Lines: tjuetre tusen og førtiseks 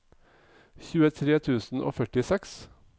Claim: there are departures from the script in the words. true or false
false